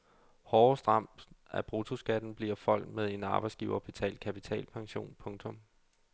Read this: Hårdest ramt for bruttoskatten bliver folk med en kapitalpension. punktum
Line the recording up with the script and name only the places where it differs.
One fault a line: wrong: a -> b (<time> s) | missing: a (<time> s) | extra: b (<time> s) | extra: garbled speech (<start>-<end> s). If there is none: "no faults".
wrong: for -> af (1.5 s)
extra: arbejdsgiverbetalt (3.2 s)